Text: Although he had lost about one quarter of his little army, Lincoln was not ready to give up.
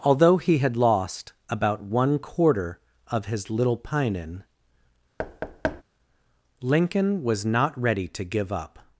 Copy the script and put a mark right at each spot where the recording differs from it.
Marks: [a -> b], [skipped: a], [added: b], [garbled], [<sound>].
Although he had lost about one quarter of his little [army, -> pinin] [thud] Lincoln was not ready to give up.